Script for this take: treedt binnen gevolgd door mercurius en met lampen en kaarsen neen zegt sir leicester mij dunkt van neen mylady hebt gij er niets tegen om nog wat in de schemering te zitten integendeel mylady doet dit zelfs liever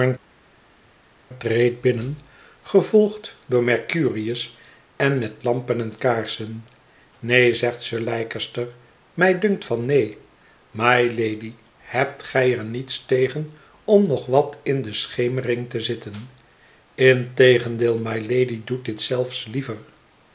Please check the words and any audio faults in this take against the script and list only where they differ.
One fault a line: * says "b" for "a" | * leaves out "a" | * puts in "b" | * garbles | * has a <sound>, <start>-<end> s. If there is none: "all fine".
all fine